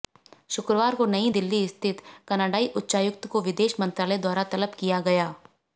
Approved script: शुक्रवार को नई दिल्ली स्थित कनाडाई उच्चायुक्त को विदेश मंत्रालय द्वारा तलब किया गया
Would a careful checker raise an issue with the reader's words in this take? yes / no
no